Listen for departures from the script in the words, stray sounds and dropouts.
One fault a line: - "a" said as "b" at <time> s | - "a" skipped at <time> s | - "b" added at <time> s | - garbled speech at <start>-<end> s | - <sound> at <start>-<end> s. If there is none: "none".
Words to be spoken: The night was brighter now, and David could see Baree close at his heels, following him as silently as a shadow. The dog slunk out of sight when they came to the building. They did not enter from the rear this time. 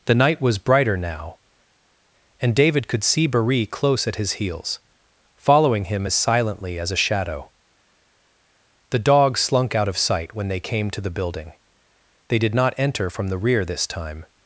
none